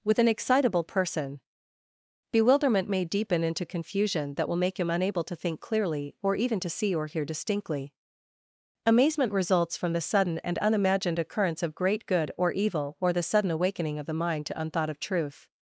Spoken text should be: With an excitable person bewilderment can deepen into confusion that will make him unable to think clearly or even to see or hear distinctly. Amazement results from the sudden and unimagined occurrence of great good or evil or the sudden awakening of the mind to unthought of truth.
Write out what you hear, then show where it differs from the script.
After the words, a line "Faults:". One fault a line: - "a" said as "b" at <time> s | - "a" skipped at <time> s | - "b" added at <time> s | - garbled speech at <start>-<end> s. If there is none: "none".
With an excitable person bewilderment may deepen into confusion that will make him unable to think clearly or even to see or hear distinctly. Amazement results from the sudden and unimagined occurrence of great good or evil or the sudden awakening of the mind to unthought of truth.
Faults:
- "can" said as "may" at 2.9 s